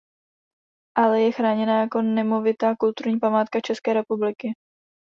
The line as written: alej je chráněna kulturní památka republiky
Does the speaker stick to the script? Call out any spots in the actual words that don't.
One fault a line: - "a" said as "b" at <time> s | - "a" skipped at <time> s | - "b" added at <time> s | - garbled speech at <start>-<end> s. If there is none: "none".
- "jako nemovitá" added at 1.8 s
- "české" added at 3.6 s